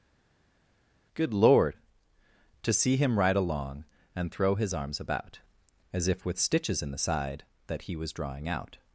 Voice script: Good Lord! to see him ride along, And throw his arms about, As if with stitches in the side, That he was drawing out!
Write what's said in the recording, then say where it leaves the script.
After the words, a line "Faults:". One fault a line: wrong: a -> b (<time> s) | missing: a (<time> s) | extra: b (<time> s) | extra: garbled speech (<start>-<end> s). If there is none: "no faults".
Good Lord! to see him ride along, And throw his arms about, As if with stitches in the side, That he was drawing out!
Faults:
no faults